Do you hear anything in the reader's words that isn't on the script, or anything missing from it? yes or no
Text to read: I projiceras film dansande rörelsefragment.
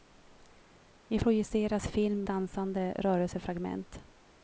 no